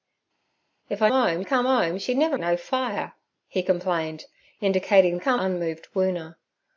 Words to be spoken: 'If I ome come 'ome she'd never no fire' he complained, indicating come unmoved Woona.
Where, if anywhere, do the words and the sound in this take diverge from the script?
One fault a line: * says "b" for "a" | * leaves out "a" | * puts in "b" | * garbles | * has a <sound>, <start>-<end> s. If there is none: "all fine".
all fine